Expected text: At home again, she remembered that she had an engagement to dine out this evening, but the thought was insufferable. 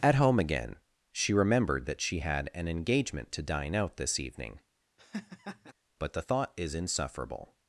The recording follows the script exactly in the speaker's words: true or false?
false